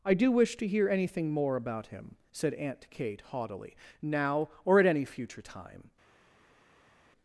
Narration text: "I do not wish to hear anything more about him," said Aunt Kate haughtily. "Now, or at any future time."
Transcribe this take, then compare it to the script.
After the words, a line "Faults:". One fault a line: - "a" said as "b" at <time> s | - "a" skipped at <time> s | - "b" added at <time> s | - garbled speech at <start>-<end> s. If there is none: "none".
"I do wish to hear anything more about him," said Aunt Kate haughtily. "Now, or at any future time."
Faults:
- "not" skipped at 0.3 s